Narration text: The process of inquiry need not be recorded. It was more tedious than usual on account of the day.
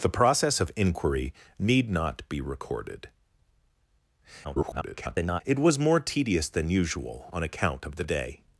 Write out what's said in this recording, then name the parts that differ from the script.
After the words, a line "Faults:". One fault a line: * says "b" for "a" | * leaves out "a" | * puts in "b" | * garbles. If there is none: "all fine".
The process of inquiry need not be recorded. [garbled] It was more tedious than usual on account of the day.
Faults:
* garbles